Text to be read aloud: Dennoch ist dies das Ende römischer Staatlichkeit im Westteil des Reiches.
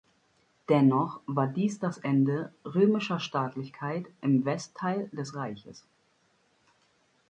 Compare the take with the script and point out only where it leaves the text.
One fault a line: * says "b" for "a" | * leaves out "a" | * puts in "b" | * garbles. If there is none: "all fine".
* says "war" for "ist"